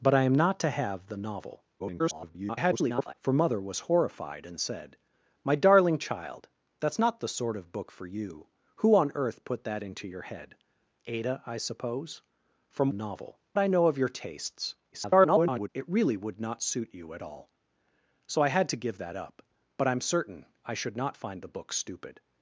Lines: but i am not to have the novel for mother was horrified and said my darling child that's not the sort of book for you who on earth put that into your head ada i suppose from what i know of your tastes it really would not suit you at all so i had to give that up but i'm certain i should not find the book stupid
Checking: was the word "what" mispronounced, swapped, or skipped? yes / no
yes